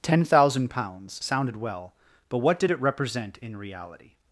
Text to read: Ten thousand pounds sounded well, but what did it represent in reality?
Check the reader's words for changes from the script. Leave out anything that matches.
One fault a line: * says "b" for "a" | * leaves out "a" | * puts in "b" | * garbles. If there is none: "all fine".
all fine